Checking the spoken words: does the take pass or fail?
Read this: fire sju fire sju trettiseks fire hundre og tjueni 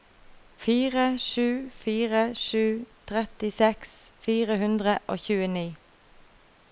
pass